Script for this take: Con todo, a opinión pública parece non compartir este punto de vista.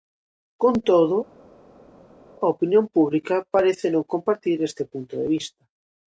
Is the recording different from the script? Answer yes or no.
no